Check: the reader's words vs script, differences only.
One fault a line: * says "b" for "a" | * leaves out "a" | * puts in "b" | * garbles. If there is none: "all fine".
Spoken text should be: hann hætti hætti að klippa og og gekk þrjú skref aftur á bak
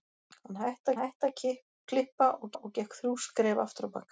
all fine